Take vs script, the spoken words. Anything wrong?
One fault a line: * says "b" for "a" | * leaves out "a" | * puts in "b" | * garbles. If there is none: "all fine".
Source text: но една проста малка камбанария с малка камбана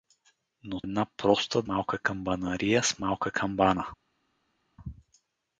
all fine